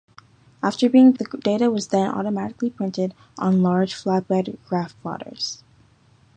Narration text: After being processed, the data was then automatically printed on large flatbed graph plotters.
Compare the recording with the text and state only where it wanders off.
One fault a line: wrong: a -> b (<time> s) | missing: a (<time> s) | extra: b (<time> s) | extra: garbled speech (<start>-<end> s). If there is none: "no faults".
missing: processed (1.1 s)